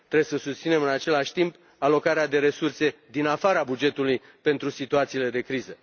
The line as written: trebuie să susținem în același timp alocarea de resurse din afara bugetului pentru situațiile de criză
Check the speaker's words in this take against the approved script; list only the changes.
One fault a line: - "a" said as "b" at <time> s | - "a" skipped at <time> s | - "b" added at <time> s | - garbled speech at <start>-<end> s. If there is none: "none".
none